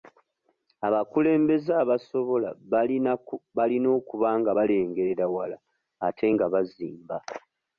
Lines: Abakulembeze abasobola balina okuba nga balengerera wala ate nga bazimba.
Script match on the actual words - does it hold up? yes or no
yes